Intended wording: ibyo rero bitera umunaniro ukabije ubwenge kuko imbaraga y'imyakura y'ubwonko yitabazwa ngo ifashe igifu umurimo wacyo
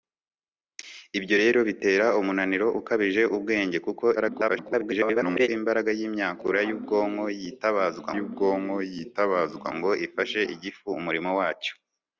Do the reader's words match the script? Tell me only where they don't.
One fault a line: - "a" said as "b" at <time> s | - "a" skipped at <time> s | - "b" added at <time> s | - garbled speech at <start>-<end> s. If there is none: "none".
- garbled speech at 4.2-5.5 s
- "y'ubwonko yitabazwa" added at 8.2 s